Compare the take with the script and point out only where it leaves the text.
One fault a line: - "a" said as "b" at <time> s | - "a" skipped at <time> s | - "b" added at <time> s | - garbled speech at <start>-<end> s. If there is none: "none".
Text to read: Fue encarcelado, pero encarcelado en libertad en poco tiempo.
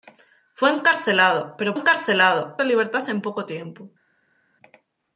none